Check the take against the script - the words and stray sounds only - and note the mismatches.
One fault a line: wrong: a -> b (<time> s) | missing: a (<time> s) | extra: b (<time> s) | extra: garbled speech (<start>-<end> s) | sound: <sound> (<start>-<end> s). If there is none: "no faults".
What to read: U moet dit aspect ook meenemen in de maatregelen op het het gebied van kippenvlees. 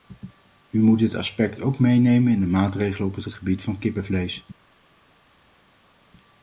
no faults